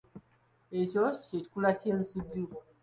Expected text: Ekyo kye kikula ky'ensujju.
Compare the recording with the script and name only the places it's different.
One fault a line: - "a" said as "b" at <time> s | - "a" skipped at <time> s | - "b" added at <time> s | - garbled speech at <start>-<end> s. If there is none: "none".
none